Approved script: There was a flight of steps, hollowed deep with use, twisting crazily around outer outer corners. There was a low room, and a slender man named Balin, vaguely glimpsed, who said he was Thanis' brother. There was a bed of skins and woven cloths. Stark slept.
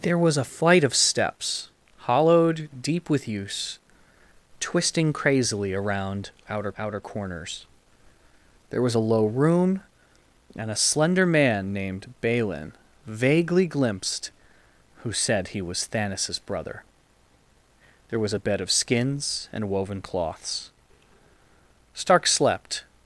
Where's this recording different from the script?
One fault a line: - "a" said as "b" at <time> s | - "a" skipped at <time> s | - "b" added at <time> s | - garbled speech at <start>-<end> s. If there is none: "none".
none